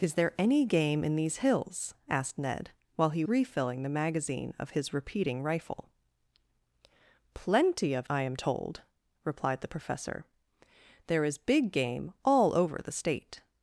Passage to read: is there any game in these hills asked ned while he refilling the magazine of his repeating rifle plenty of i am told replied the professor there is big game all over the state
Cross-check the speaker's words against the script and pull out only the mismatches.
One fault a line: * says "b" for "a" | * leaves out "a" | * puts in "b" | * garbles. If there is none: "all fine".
all fine